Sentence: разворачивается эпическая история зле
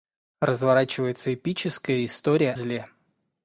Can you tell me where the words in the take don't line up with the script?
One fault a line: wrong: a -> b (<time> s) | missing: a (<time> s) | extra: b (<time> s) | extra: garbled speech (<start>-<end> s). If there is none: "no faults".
no faults